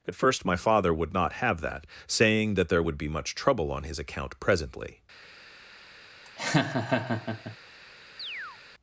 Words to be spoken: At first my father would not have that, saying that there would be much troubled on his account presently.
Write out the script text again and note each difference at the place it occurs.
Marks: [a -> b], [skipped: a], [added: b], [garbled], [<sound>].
At first my father would not have that, saying that there would be much [troubled -> trouble] on his account presently. [laugh] [chirp]